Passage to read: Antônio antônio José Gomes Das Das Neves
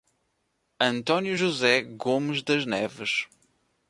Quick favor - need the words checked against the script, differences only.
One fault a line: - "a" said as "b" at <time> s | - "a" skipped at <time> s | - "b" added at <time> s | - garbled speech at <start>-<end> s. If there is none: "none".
- "antônio" skipped at 1.4 s
- "Das" skipped at 2.6 s